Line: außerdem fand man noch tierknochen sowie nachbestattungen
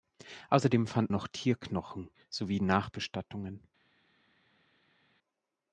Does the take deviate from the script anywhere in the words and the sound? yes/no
yes